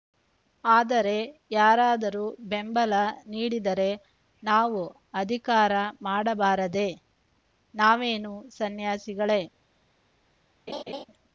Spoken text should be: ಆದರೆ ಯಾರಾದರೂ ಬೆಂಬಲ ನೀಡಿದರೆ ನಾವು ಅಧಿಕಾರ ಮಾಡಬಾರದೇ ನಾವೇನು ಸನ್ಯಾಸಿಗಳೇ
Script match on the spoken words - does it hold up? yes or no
yes